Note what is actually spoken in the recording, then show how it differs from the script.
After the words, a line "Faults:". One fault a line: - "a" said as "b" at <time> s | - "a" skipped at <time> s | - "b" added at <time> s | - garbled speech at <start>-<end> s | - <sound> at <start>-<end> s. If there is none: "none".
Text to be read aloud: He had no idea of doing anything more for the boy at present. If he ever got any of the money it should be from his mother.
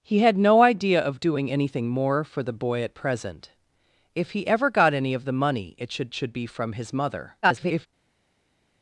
He had no idea of doing anything more for the boy at present. If he ever got any of the money it should should be from his mother. [garbled]
Faults:
- "should" added at 6.1 s
- garbled speech at 7.4-7.9 s